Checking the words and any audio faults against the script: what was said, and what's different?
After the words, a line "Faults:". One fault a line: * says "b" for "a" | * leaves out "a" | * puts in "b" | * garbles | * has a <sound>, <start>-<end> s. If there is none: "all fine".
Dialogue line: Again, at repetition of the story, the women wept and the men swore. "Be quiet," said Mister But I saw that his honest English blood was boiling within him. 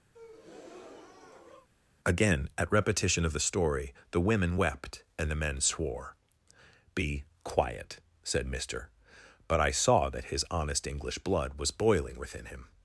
Again, at repetition of the story, the women wept and the men swore. "Be quiet," said Mister But I saw that his honest English blood was boiling within him.
Faults:
* has a breath, 0.1-1.7 s